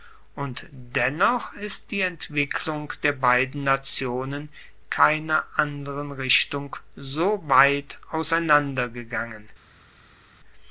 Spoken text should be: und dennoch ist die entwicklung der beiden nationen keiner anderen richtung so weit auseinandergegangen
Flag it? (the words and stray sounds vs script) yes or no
no